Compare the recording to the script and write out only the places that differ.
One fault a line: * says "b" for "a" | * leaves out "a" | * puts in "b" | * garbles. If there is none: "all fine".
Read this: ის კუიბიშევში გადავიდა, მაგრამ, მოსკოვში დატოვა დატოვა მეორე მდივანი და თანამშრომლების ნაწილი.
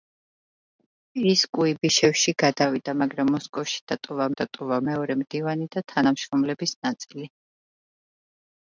all fine